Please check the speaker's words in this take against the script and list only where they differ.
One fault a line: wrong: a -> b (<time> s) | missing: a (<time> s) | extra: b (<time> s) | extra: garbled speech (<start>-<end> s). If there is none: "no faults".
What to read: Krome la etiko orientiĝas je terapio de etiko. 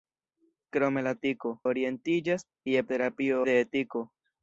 no faults